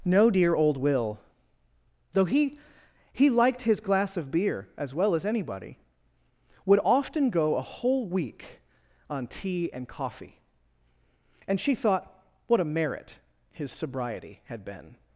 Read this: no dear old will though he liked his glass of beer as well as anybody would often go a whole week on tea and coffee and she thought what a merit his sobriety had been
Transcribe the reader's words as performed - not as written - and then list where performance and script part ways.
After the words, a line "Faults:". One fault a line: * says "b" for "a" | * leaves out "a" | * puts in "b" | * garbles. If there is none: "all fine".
no dear old will though he he liked his glass of beer as well as anybody would often go a whole week on tea and coffee and she thought what a merit his sobriety had been
Faults:
* puts in "he"